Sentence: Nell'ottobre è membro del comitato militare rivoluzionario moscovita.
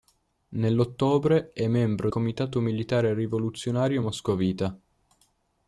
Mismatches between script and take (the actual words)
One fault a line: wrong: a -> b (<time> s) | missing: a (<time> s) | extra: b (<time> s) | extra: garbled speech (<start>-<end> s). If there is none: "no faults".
missing: del (2.1 s)